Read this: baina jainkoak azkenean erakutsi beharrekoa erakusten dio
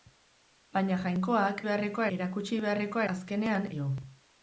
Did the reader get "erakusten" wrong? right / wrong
wrong